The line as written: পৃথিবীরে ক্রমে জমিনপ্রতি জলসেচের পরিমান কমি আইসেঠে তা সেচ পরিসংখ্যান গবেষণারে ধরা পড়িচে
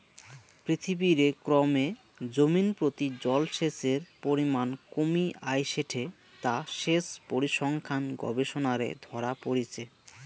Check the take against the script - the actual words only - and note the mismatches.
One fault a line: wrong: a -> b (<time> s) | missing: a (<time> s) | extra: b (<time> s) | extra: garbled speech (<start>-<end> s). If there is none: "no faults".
no faults